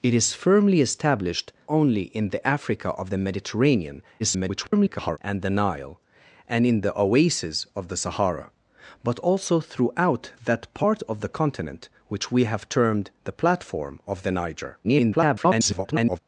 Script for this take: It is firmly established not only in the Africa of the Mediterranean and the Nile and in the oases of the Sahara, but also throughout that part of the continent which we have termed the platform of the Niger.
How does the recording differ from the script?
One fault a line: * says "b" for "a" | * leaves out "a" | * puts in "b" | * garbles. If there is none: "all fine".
* leaves out "not"
* garbles
* garbles